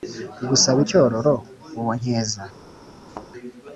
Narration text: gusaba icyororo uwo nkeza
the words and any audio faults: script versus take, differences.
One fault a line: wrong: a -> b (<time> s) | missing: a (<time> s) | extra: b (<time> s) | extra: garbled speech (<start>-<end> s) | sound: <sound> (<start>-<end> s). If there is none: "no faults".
sound: thud (3.1-3.3 s)